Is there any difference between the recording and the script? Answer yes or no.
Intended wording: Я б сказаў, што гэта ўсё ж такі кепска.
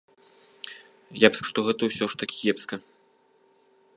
yes